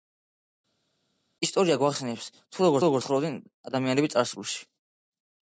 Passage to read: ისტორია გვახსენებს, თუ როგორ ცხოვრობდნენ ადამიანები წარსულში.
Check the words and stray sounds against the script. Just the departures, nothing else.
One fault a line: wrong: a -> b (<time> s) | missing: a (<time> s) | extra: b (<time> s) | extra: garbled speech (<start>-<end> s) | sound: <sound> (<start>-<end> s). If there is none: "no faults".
extra: როგორ (2.8 s)